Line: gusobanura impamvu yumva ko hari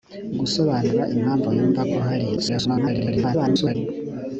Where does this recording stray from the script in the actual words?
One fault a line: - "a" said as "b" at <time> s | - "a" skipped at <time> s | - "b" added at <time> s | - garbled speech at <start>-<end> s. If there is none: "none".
- garbled speech at 2.4-3.8 s